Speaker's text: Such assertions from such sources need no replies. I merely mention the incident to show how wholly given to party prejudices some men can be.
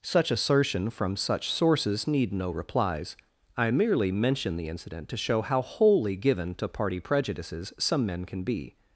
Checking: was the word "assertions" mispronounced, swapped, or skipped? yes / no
yes